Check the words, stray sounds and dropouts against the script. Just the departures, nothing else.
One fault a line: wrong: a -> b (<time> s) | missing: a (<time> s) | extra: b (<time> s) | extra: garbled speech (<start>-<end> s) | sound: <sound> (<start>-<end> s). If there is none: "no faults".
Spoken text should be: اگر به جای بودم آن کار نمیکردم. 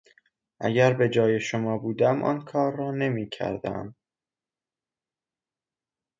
extra: شما (1.4 s)
extra: را (2.8 s)